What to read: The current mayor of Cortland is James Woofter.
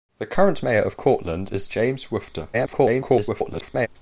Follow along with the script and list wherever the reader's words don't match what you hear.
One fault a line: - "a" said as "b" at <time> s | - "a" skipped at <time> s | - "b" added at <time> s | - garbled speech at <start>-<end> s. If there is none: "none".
- garbled speech at 2.5-3.9 s